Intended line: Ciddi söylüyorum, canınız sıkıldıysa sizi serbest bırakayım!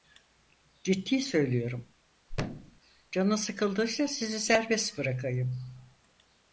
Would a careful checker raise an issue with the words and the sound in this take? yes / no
yes